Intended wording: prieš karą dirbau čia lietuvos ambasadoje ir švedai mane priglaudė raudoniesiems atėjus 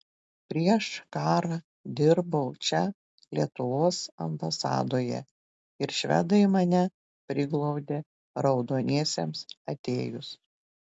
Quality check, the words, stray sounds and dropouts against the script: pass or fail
pass